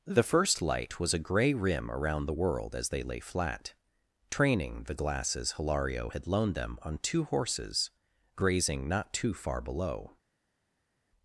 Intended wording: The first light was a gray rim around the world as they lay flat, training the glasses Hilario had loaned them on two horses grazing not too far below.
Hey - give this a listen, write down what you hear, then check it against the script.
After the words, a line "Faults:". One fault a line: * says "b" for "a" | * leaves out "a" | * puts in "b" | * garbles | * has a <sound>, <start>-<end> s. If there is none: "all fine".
The first light was a gray rim around the world as they lay flat, training the glasses Hilario had loaned them on two horses grazing not too far below.
Faults:
all fine